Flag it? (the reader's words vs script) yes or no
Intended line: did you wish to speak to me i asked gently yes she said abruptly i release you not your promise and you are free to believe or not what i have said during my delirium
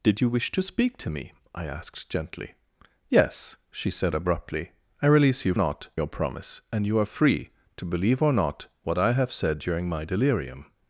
no